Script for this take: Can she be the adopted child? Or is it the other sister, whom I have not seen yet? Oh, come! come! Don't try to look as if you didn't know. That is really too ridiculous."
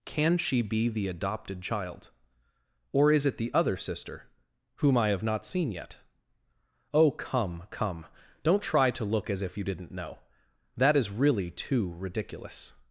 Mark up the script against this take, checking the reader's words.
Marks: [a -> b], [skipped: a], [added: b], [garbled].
Can she be the adopted child? Or is it the other sister, whom I have not seen yet? Oh, come! come! Don't try to look as if you didn't know. That is really too ridiculous."